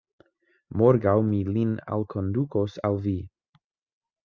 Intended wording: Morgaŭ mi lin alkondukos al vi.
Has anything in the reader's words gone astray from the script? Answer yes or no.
no